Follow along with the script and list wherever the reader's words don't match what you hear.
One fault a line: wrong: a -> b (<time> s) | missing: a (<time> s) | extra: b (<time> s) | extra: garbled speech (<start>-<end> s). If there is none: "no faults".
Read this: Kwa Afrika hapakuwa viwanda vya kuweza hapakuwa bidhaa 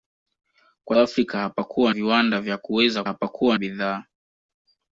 no faults